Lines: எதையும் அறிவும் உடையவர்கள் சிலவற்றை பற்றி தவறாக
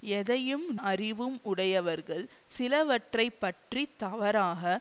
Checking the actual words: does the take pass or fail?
pass